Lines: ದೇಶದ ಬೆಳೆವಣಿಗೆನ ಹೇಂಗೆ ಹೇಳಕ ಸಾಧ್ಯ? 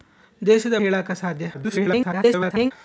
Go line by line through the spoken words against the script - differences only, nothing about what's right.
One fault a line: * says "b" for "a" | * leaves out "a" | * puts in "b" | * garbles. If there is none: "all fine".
* leaves out "ಬೆಳೆವಣಿಗೆನ ಹೇಂಗೆ"
* garbles